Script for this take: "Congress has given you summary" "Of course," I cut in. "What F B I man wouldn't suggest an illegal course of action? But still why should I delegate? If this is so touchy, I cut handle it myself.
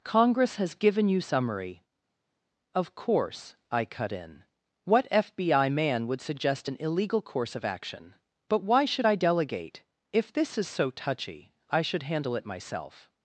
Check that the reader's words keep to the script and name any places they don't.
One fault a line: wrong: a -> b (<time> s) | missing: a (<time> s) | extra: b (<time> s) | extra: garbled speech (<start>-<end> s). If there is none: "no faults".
wrong: wouldn't -> would (6.1 s)
missing: still (8.6 s)
wrong: cut -> should (11.8 s)